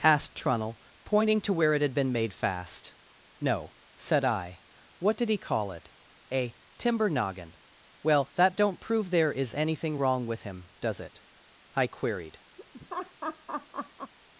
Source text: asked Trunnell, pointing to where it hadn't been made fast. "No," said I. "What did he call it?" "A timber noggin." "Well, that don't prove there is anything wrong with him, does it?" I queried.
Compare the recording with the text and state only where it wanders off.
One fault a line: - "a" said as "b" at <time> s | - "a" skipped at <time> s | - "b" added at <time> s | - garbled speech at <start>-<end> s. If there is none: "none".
- "hadn't" said as "had" at 1.8 s